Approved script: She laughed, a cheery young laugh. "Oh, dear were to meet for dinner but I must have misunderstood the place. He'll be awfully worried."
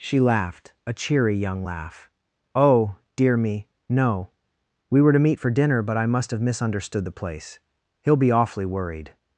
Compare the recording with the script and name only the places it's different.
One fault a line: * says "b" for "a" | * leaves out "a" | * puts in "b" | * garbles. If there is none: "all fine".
* puts in "me no We"